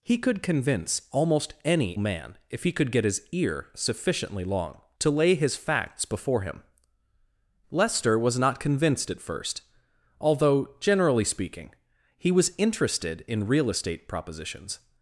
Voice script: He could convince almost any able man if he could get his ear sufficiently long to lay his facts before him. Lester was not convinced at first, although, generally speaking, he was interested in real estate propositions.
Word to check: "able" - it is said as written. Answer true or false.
false